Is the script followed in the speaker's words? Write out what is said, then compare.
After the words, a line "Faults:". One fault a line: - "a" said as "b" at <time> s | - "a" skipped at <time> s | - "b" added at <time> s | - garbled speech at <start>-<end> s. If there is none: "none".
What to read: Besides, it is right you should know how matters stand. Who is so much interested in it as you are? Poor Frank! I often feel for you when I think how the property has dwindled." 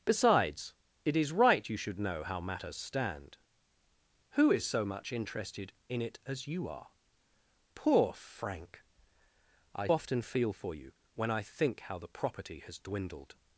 Besides, it is right you should know how matters stand. Who is so much interested in it as you are? Poor Frank! I often feel for you when I think how the property has dwindled."
Faults:
none